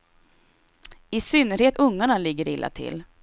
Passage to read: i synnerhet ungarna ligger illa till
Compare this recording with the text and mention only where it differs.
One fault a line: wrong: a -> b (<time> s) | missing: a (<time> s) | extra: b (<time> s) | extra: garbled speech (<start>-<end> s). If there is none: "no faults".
no faults